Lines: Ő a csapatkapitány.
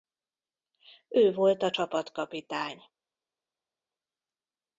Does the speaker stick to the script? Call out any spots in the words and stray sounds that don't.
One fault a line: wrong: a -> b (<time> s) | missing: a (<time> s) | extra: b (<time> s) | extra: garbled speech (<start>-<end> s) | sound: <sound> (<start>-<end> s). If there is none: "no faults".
extra: volt (1.3 s)